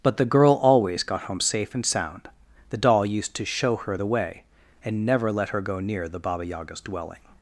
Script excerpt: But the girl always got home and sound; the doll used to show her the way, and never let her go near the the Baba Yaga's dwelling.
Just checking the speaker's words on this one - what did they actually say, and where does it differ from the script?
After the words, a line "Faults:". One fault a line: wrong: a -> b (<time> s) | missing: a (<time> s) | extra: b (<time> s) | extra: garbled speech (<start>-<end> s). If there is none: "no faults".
But the girl always got home safe and sound; the doll used to show her the way, and never let her go near the Baba Yaga's dwelling.
Faults:
extra: safe (1.4 s)
missing: the (6.2 s)